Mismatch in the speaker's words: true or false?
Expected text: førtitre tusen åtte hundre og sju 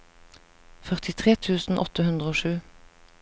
false